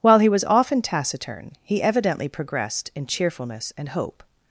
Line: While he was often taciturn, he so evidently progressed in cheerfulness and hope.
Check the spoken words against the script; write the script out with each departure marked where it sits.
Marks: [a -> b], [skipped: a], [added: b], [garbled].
While he was often taciturn, he [skipped: so] evidently progressed in cheerfulness and hope.